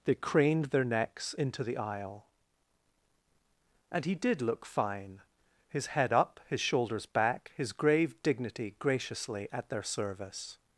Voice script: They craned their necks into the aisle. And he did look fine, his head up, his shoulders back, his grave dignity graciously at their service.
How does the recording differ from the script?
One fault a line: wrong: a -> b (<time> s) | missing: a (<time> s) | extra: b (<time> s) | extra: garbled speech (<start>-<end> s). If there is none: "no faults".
no faults